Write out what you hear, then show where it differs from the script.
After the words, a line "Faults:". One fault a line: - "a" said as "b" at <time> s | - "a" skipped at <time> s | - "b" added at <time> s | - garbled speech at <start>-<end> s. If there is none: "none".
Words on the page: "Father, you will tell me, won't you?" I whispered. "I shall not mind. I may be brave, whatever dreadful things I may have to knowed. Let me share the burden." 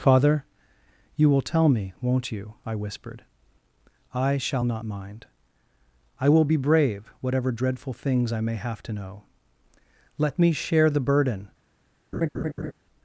"Father, you will tell me, won't you?" I whispered. "I shall not mind. I will be brave, whatever dreadful things I may have to know. Let me share the burden."
Faults:
- "may" said as "will" at 6.3 s
- "knowed" said as "know" at 8.9 s